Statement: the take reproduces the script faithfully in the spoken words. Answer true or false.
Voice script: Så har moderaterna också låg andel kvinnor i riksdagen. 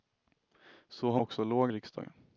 false